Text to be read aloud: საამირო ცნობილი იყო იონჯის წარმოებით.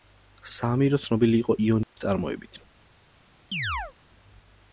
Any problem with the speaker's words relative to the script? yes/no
no